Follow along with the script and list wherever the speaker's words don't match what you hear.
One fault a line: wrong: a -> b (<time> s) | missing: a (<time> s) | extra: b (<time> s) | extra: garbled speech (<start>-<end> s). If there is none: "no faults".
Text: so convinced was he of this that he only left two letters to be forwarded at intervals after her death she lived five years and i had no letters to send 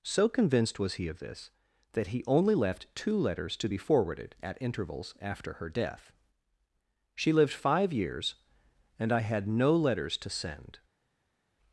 no faults